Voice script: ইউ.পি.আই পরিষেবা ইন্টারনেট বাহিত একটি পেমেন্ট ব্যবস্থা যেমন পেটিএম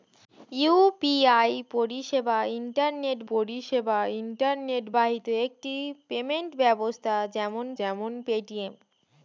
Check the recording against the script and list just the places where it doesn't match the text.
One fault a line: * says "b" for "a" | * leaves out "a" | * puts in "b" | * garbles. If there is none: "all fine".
* puts in "পরিষেবা ইন্টারনেট"
* puts in "যেমন"